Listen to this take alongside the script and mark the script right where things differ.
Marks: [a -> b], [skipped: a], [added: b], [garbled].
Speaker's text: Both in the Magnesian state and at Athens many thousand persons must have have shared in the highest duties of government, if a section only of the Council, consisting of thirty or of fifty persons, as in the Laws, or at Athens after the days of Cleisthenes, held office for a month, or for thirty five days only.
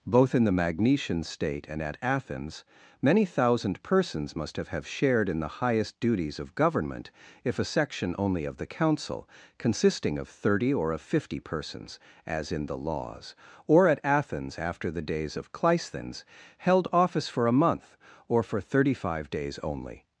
Both in the Magnesian state and at Athens many thousand persons must have have shared in the highest duties of government, if a section only of the Council, consisting of thirty or of fifty persons, as in the Laws, or at Athens after the days of Cleisthenes, held office for a month, or for thirty five days only.